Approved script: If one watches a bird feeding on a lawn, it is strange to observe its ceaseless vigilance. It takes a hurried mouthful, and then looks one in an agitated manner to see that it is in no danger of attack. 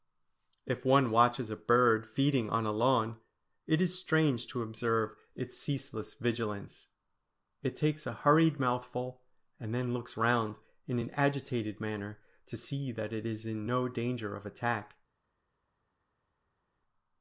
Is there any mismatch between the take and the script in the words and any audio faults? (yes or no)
yes